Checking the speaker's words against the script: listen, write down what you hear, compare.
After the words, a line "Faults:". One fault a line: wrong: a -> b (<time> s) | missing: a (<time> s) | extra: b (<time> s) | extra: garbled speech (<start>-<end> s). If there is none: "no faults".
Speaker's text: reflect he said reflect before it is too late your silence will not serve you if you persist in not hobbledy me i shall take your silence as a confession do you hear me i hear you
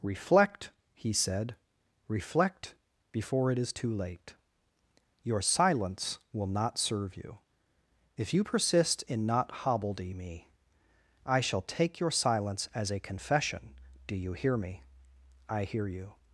reflect he said reflect before it is too late your silence will not serve you if you persist in not hobbledy me i shall take your silence as a confession do you hear me i hear you
Faults:
no faults